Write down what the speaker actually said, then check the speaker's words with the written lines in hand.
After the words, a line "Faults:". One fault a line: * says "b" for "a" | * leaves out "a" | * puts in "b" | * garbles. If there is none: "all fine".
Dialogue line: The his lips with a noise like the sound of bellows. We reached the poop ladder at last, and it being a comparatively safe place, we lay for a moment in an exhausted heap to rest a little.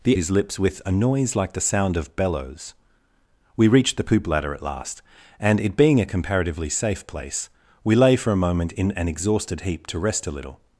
The his lips with a noise like the sound of bellows. We reached the poop ladder at last, and it being a comparatively safe place, we lay for a moment in an exhausted heap to rest a little.
Faults:
all fine